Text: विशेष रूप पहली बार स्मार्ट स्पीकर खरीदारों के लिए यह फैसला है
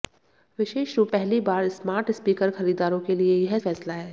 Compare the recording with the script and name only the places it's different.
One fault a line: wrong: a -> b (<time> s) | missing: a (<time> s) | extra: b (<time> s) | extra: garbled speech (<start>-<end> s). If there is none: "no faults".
no faults